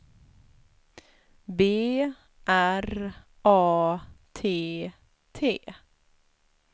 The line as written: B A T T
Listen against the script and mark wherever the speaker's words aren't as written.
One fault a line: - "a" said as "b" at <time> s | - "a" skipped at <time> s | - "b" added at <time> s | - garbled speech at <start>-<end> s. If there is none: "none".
- "R" added at 2.5 s